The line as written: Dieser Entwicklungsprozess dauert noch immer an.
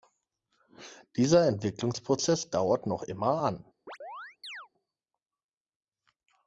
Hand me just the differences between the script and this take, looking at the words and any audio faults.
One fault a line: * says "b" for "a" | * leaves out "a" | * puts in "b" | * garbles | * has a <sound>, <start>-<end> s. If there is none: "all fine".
* has a chirp, 3.9-4.7 s